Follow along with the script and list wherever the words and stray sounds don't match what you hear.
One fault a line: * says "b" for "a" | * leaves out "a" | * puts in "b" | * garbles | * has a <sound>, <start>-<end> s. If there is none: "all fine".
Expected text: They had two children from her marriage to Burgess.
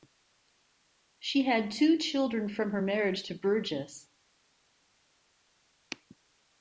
* says "She" for "They"